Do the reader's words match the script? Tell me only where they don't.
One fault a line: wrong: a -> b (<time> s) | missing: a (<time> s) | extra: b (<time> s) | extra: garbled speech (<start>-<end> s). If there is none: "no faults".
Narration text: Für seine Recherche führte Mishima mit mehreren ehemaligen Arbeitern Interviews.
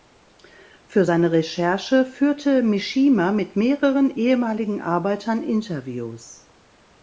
no faults